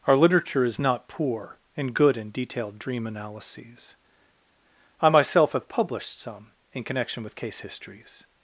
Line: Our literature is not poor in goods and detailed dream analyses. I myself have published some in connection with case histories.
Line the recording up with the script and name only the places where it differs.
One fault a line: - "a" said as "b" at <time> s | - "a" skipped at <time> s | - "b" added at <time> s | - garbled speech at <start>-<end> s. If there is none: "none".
- "goods" said as "good" at 1.9 s